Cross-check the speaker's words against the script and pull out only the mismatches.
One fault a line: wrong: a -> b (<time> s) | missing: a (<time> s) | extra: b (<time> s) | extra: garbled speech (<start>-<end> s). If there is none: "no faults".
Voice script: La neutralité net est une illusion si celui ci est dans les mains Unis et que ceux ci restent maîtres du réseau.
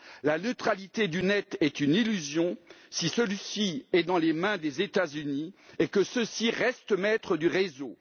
extra: du (1.1 s)
extra: des États (4.6 s)